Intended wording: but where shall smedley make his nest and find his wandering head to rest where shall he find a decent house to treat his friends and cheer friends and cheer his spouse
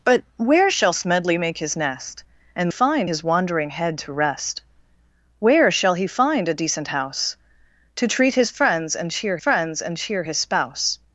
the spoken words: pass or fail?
pass